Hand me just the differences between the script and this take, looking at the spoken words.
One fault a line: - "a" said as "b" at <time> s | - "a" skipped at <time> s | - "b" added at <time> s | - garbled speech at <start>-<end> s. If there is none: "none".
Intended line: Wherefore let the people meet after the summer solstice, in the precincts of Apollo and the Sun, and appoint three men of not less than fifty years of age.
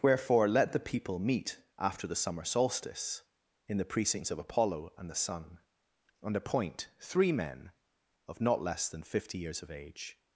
none